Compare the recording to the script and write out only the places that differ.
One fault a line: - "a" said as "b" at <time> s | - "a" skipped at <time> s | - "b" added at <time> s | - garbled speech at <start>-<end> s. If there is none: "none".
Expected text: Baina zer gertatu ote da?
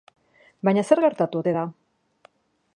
none